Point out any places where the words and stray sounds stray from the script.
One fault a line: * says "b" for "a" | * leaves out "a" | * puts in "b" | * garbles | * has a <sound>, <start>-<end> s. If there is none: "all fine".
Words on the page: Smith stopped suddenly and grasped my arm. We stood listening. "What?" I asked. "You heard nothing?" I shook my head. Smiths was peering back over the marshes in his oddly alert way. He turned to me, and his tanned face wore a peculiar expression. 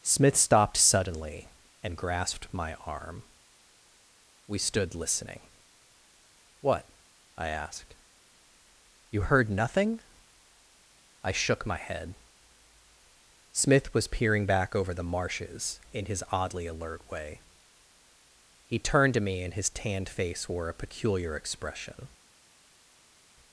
* says "Smith" for "Smiths"